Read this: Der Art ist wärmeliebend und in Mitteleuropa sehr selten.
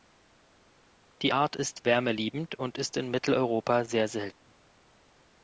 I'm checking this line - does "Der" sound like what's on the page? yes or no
no